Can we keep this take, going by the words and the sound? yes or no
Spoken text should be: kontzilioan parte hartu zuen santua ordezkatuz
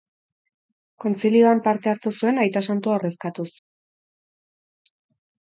no